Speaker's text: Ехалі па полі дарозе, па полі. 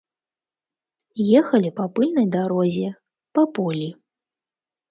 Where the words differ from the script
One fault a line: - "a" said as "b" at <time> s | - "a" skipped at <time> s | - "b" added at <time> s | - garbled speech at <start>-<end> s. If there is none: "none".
- "полі" said as "пыльнай" at 2.0 s